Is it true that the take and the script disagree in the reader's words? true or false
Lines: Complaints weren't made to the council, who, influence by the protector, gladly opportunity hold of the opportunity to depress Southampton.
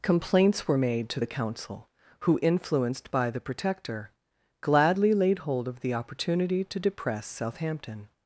true